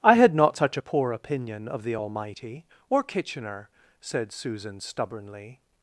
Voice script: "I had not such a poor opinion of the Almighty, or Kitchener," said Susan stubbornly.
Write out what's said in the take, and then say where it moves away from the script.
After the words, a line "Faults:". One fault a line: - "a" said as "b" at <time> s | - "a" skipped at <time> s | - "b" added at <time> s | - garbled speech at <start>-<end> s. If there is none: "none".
"I had not such a poor opinion of the Almighty, or Kitchener," said Susan stubbornly.
Faults:
none